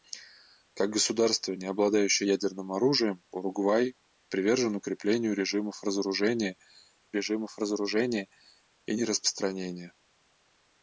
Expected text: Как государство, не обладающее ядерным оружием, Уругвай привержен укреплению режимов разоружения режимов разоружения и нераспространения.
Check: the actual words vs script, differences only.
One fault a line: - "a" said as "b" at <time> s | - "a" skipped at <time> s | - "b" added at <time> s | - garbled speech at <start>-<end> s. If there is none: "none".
none